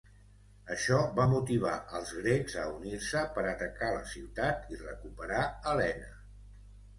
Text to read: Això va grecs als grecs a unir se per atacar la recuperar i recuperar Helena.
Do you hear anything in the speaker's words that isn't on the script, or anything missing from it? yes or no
yes